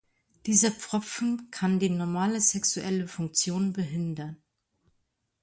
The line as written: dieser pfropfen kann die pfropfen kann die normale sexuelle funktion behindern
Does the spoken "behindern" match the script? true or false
true